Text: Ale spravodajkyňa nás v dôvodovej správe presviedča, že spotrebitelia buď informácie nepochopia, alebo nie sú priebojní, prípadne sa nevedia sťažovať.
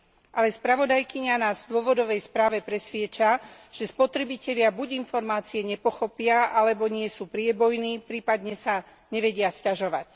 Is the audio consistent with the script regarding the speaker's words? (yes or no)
yes